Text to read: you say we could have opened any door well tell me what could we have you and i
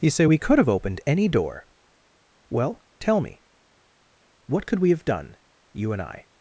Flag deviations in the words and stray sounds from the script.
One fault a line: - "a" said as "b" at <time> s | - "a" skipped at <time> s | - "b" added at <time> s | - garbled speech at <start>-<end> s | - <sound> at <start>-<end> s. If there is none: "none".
- "done" added at 5.0 s